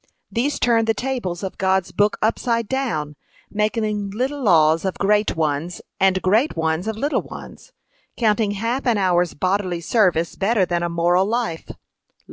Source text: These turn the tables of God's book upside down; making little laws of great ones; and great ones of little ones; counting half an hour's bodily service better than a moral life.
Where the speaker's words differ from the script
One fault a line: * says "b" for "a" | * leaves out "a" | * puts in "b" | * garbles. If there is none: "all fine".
all fine